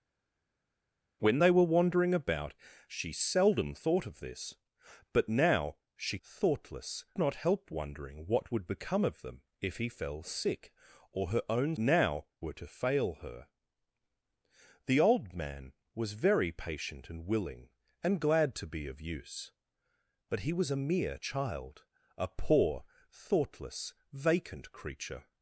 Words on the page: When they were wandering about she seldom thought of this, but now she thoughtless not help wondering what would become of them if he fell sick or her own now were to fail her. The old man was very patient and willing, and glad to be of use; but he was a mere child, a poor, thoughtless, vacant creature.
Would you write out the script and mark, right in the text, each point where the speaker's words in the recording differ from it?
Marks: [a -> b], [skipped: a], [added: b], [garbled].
When they were wandering about she seldom thought of this, but now she thoughtless not help wondering what would become of them if he fell sick or her own now were to fail her. The old man was very patient and willing, and glad to be of use; but he was a mere child, a poor, thoughtless, vacant creature.